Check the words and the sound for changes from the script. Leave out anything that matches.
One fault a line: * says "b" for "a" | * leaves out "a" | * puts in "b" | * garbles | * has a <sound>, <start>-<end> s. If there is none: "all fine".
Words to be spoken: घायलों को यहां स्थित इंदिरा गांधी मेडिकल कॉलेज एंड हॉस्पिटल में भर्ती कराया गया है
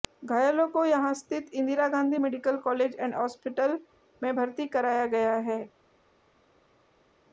all fine